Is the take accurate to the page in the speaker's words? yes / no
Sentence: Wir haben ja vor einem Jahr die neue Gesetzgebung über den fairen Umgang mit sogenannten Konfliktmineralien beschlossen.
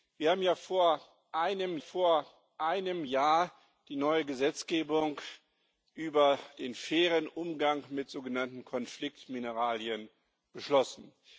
no